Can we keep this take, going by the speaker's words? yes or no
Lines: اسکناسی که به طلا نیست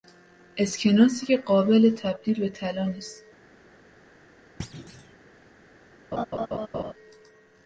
no